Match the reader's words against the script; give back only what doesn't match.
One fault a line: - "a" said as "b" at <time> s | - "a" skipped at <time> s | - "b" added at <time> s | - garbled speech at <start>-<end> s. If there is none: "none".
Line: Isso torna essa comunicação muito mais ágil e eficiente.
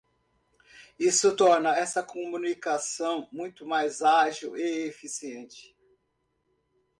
none